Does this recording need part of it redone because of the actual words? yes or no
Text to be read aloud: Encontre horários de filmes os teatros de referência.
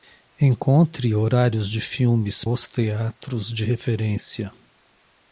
no